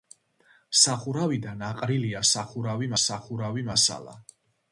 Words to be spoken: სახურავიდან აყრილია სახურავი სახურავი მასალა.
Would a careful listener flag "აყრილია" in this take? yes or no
no